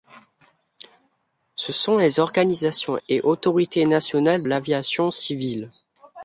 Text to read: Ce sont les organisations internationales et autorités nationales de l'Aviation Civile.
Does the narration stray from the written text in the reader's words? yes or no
yes